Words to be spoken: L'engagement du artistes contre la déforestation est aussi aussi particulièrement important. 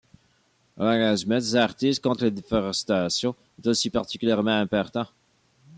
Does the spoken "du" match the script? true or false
false